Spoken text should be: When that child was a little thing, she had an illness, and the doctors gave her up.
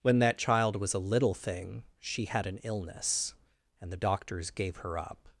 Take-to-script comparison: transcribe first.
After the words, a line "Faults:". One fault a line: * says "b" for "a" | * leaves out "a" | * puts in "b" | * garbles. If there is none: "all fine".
When that child was a little thing, she had an illness, and the doctors gave her up.
Faults:
all fine